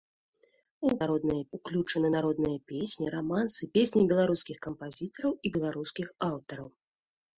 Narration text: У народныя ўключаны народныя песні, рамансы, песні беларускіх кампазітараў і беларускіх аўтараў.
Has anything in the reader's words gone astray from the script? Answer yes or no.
no